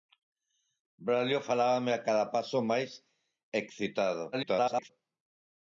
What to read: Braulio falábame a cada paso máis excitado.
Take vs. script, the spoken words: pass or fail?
fail